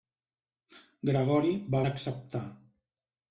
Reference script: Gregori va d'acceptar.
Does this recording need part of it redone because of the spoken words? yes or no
no